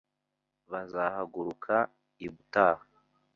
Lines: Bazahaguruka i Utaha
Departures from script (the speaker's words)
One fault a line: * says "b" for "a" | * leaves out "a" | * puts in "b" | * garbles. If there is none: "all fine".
all fine